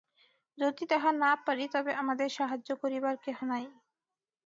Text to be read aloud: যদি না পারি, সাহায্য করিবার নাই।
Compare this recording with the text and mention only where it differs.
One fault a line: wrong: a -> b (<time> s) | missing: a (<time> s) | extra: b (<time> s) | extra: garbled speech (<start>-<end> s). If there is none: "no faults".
extra: তাহা (0.9 s)
extra: তবে আমাদের (1.7 s)
extra: কেহ (3.3 s)